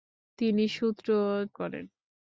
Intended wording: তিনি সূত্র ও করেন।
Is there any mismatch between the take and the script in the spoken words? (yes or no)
no